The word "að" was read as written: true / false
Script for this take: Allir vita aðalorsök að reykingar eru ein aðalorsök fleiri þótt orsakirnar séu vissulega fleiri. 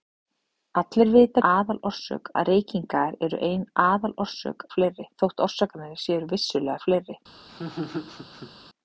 true